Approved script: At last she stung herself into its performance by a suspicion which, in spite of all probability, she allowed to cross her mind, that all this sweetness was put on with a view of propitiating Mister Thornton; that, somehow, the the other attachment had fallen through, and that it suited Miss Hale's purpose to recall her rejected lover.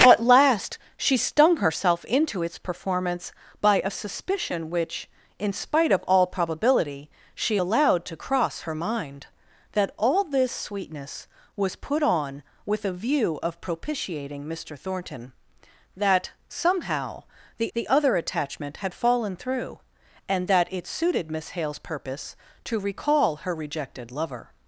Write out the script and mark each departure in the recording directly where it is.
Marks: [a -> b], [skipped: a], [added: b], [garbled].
At last she stung herself into its performance by a suspicion which, in spite of all probability, she allowed to cross her mind, that all this sweetness was put on with a view of propitiating Mister Thornton; that, somehow, the the other attachment had fallen through, and that it suited Miss Hale's purpose to recall her rejected lover.